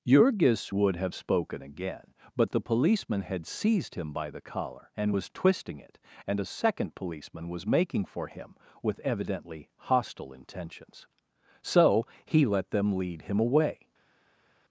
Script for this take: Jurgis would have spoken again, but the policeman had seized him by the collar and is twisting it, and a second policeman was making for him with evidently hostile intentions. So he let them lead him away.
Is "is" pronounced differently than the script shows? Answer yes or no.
yes